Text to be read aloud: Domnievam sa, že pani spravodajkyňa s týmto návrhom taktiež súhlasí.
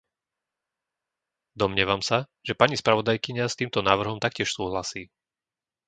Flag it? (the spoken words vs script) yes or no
no